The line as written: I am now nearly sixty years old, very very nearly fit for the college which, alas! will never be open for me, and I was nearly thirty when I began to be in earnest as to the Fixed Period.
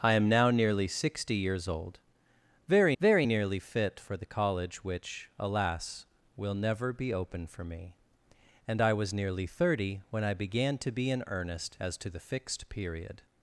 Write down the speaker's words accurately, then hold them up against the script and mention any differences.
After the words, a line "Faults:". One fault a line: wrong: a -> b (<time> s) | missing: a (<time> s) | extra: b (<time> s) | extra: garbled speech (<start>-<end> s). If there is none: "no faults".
I am now nearly sixty years old, very very nearly fit for the college which, alas! will never be open for me, and I was nearly thirty when I began to be in earnest as to the Fixed Period.
Faults:
no faults